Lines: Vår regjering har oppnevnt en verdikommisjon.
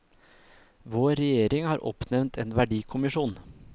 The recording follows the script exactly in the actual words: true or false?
true